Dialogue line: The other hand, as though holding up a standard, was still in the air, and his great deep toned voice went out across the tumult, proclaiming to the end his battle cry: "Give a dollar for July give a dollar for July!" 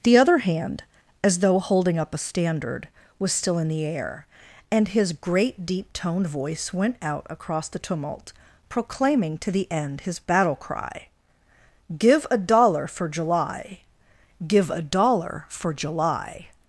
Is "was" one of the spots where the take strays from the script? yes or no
no